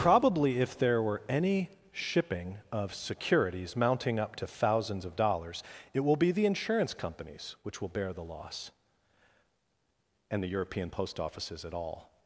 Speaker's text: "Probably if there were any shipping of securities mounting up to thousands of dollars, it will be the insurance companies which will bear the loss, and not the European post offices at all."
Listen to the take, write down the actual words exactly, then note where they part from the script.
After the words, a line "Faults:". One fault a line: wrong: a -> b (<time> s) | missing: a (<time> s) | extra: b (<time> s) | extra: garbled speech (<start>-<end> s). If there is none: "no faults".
"Probably if there were any shipping of securities mounting up to thousands of dollars, it will be the insurance companies which will bear the loss, and the European post offices at all."
Faults:
missing: not (10.4 s)